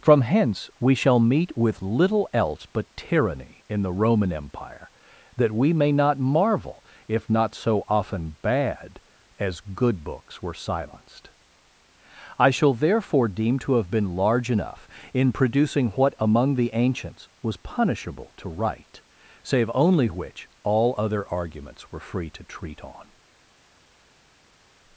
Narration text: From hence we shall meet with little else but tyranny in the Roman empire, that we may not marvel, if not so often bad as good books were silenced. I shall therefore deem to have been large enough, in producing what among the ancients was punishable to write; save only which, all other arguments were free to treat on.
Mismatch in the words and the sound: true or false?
false